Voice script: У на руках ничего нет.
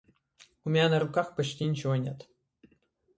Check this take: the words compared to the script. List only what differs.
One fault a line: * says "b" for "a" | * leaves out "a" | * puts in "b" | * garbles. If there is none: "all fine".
* puts in "меня"
* puts in "почти"